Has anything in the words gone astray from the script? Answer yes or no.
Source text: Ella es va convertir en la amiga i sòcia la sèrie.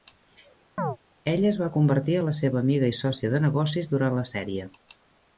yes